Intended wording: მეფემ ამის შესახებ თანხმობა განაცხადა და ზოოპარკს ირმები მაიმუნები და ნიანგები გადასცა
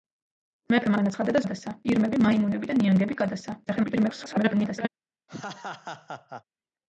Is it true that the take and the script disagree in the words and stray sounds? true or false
true